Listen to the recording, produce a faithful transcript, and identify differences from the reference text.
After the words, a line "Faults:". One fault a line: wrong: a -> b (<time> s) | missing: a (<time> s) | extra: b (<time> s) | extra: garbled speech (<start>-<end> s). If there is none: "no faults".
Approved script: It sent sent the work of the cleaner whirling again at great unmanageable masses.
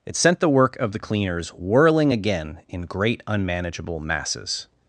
It sent the work of the cleaners whirling again in great unmanageable masses.
Faults:
missing: sent (0.4 s)
wrong: cleaner -> cleaners (1.0 s)
wrong: at -> in (2.7 s)